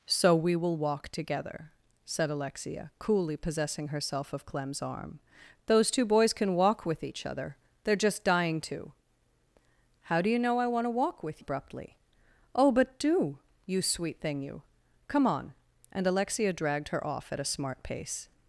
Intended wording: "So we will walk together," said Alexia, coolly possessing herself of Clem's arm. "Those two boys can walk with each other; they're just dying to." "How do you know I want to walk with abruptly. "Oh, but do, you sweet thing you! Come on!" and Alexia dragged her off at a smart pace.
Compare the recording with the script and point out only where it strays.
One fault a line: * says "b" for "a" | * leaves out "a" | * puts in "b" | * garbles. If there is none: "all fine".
all fine